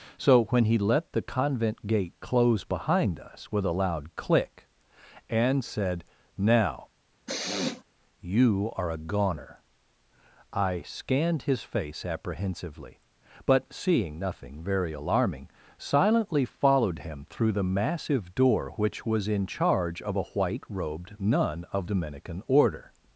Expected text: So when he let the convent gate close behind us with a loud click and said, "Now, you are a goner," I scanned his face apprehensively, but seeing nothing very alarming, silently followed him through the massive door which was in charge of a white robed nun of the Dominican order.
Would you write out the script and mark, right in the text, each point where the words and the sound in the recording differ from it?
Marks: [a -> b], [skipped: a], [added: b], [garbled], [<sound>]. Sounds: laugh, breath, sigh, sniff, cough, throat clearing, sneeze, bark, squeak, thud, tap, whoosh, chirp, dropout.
So when he let the convent gate close behind us with a loud click and said, "Now, [sniff] you are a goner," I scanned his face apprehensively, but seeing nothing very alarming, silently followed him through the massive door which was in charge of a white robed nun of [skipped: the] Dominican order.